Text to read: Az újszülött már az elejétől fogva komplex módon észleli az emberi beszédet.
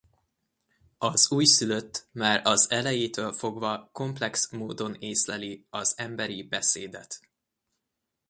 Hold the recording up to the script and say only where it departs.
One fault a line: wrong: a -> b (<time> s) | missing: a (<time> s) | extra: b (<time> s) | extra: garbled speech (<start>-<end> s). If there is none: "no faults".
no faults